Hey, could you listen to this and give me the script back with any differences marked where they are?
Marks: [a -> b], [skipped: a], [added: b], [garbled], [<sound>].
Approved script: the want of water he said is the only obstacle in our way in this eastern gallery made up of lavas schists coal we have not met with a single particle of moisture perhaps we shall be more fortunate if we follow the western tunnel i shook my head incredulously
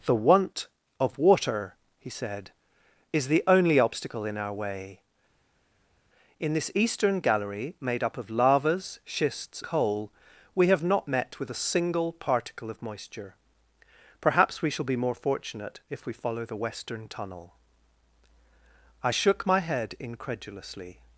the want of water he said is the only obstacle in our way in this eastern gallery made up of lavas schists coal we have not met with a single particle of moisture perhaps we shall be more fortunate if we follow the western tunnel i shook my head incredulously